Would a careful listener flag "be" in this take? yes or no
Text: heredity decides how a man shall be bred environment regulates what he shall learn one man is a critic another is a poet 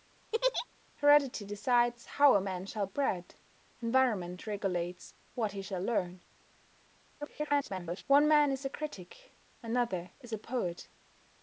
yes